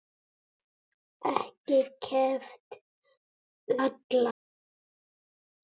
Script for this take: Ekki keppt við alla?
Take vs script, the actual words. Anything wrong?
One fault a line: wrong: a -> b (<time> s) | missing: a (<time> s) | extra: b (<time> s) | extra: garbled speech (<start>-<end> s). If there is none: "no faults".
missing: við (2.8 s)